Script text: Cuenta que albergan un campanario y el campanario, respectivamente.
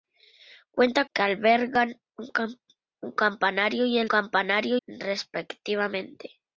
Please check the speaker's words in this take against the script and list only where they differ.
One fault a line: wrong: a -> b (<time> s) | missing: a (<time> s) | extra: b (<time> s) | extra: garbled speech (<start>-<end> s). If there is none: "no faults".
no faults